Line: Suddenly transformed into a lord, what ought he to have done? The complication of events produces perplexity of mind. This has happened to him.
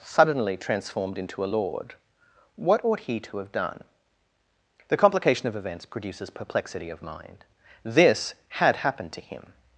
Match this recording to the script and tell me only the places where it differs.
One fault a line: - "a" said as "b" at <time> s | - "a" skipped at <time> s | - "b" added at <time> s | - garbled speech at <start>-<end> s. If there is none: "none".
- "has" said as "had" at 8.5 s